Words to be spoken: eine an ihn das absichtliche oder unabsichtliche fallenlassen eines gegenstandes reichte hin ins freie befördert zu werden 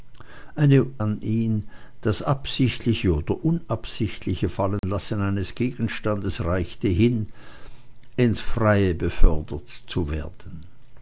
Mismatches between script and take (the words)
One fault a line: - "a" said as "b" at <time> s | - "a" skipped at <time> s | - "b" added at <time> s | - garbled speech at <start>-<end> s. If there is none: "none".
none